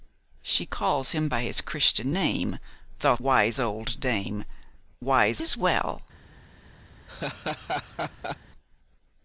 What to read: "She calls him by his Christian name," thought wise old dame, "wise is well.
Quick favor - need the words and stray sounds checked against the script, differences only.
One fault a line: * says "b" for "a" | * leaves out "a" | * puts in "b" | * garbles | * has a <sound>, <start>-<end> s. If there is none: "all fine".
* has a laugh, 7.1-8.4 s